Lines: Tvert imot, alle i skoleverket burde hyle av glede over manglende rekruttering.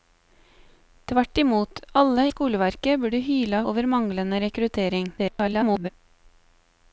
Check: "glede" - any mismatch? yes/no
yes